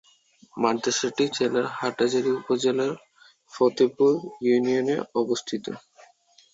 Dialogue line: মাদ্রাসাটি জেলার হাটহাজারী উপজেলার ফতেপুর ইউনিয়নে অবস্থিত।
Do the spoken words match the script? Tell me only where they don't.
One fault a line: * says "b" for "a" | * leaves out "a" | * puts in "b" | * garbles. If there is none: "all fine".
all fine